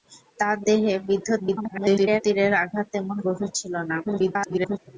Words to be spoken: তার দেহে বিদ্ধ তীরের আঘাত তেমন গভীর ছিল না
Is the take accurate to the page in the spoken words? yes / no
no